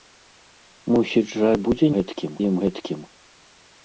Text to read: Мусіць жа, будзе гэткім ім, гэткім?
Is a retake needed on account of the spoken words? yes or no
no